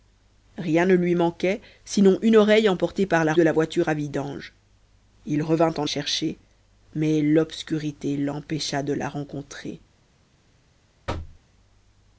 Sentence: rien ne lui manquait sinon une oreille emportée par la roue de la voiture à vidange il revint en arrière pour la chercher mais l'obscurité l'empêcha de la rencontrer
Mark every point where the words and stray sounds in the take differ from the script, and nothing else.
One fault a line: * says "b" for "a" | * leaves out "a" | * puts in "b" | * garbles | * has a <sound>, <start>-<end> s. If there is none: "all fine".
* leaves out "roue"
* leaves out "arrière pour la"
* has a thud, 11.1-11.4 s